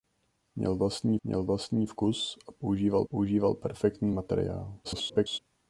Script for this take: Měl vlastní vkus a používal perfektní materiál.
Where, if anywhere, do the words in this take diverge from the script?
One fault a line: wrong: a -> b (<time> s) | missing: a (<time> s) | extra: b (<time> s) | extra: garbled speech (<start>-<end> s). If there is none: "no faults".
extra: měl vlastní (1.2 s)
extra: používal (3.0 s)
extra: garbled speech (4.8-5.4 s)